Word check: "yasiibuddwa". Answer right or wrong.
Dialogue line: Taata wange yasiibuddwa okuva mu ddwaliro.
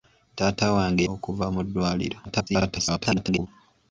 wrong